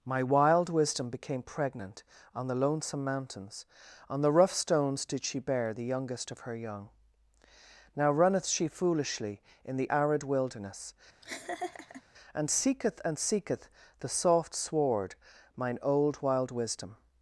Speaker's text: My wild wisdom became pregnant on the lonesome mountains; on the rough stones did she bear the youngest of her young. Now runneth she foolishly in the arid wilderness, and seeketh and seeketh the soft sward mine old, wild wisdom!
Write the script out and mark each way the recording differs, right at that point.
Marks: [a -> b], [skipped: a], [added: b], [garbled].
My wild wisdom became pregnant on the lonesome mountains; on the rough stones did she bear the youngest of her young. Now runneth she foolishly in the arid wilderness, and seeketh and seeketh the soft sward mine old, wild wisdom!